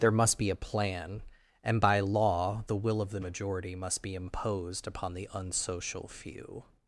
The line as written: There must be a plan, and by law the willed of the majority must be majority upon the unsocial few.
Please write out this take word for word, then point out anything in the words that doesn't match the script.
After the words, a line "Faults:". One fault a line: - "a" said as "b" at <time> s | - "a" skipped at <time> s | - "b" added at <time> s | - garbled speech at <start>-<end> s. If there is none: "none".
There must be a plan, and by law the will of the majority must be imposed upon the unsocial few.
Faults:
- "willed" said as "will" at 2.8 s
- "majority" said as "imposed" at 4.1 s